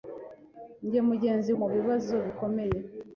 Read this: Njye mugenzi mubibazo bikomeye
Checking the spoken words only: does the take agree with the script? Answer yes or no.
yes